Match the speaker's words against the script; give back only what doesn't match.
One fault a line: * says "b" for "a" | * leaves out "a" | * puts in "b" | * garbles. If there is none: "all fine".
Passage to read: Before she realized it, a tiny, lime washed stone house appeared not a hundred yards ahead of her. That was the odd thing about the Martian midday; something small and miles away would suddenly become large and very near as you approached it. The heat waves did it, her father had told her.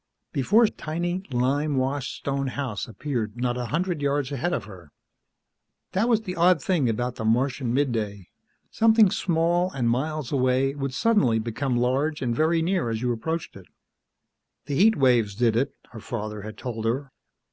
* leaves out "she realized it"